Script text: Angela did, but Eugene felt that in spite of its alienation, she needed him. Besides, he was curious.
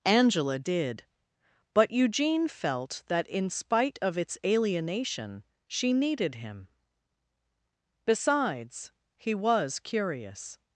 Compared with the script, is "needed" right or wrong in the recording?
right